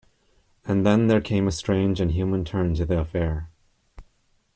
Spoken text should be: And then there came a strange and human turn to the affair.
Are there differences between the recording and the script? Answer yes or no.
no